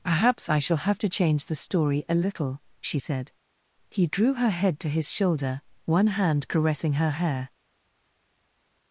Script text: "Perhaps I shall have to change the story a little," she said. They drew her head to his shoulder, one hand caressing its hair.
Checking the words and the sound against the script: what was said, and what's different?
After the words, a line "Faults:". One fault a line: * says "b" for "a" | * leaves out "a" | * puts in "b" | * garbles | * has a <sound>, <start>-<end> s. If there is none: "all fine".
"Perhaps I shall have to change the story a little," she said. He drew her head to his shoulder, one hand caressing her hair.
Faults:
* says "He" for "They"
* says "her" for "its"